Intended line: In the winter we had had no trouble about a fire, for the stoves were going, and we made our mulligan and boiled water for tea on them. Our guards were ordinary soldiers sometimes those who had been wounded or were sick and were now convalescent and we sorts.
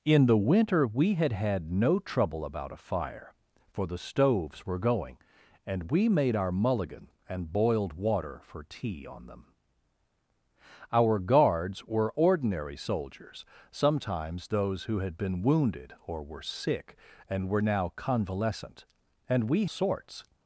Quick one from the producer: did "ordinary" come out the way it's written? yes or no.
yes